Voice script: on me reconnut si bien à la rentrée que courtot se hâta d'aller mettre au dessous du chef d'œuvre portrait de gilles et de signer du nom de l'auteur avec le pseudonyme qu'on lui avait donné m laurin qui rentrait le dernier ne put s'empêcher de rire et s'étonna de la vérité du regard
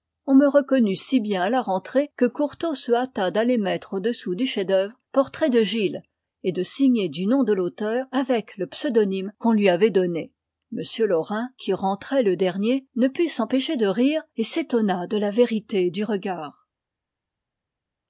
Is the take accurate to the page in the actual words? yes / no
yes